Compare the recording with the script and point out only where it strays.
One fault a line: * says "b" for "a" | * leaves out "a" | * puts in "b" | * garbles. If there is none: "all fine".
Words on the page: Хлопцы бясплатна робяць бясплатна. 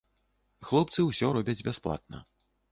* says "ўсё" for "бясплатна"